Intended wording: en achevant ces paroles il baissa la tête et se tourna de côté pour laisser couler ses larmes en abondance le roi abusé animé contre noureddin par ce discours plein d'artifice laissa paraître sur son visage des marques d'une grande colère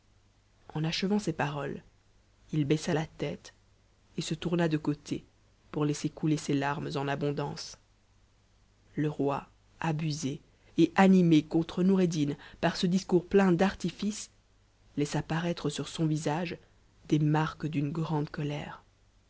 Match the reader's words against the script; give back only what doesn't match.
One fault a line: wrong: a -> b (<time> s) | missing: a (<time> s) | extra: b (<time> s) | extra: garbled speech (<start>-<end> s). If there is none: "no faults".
extra: et (10.8 s)